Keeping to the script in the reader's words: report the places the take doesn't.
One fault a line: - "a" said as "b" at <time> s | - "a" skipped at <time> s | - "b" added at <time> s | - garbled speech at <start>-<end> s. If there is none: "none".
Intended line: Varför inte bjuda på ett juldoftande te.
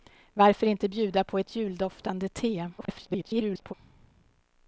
- garbled speech at 2.8-3.7 s